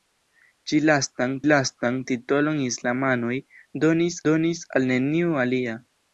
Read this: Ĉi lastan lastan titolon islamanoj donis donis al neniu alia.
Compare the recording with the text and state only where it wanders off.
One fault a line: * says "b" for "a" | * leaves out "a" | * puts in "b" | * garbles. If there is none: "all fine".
all fine